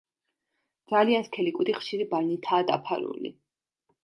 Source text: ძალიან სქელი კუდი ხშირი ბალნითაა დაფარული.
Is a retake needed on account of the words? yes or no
no